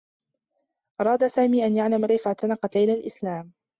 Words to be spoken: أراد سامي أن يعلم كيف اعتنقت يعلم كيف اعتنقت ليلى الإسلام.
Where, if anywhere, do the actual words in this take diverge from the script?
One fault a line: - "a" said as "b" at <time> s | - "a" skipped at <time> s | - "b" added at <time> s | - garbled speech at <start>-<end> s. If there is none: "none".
- "يعلم كيف اعتنقت" skipped at 2.8 s